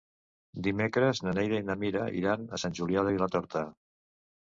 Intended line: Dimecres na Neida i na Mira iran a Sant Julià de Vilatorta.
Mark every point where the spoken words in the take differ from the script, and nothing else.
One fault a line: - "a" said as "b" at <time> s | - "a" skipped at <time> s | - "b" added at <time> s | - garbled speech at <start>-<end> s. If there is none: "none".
none